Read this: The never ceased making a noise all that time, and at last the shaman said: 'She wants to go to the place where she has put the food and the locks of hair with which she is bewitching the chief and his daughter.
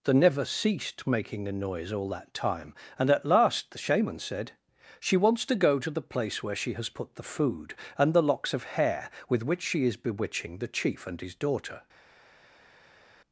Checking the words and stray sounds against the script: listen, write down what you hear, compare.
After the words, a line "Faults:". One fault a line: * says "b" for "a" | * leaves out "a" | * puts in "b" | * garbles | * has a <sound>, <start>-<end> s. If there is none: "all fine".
The never ceased making a noise all that time, and at last the shaman said: 'She wants to go to the place where she has put the food and the locks of hair with which she is bewitching the chief and his daughter.
Faults:
all fine